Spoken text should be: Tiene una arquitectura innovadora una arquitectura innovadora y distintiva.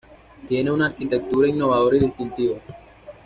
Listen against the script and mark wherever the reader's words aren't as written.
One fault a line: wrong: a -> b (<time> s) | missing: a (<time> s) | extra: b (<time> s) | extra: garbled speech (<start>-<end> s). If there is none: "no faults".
missing: una arquitectura innovadora (2.0 s)